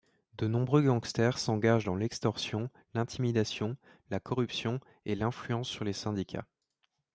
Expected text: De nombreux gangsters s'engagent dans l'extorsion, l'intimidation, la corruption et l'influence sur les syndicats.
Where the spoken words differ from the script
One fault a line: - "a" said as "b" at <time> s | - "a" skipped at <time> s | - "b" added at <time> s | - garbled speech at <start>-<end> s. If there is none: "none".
none